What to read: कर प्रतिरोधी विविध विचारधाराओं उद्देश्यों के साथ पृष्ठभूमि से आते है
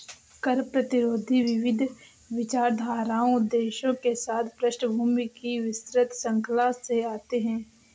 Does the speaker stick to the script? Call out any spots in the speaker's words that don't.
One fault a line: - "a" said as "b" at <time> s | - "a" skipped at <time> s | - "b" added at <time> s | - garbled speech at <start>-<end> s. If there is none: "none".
- "की विस्तृत श्रृंखला" added at 5.4 s